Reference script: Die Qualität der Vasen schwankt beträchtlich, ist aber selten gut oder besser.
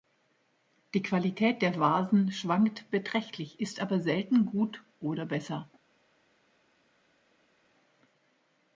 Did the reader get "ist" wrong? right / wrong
right